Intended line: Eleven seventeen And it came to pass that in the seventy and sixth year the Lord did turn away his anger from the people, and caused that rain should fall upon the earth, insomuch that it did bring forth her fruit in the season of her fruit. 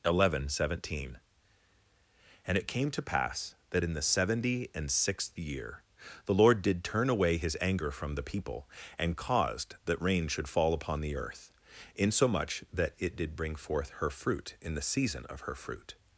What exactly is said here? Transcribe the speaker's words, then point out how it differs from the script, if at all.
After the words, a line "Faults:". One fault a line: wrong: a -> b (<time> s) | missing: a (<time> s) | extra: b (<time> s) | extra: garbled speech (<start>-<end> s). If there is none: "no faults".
Eleven seventeen And it came to pass that in the seventy and sixth year the Lord did turn away his anger from the people, and caused that rain should fall upon the earth, insomuch that it did bring forth her fruit in the season of her fruit.
Faults:
no faults